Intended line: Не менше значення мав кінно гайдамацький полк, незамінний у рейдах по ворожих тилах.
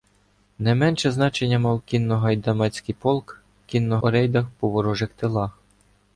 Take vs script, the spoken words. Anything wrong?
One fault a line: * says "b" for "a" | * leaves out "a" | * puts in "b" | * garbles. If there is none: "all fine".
* says "кінно" for "незамінний"